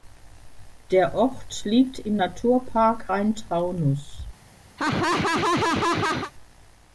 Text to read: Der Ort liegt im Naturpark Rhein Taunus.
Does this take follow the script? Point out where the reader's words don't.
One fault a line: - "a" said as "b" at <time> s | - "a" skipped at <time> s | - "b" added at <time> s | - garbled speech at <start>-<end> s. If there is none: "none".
none